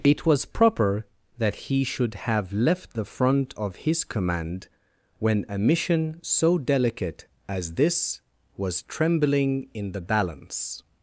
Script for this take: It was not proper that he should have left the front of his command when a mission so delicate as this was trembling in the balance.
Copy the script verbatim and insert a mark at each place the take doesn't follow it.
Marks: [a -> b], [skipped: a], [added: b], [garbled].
It was [skipped: not] proper that he should have left the front of his command when a mission so delicate as this was trembling in the balance.